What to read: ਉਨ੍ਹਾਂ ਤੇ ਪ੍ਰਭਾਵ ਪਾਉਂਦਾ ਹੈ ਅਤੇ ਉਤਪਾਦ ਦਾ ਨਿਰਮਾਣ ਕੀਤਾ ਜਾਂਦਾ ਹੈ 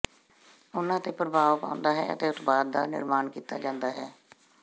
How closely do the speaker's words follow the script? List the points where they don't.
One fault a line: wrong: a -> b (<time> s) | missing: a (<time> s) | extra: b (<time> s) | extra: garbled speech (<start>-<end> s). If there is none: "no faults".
no faults